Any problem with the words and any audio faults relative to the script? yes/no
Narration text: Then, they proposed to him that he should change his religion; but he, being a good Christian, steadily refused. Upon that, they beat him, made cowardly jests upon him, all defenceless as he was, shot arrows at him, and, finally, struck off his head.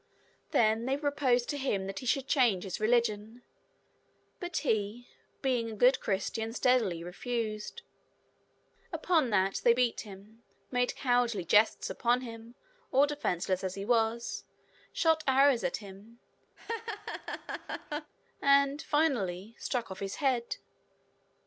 yes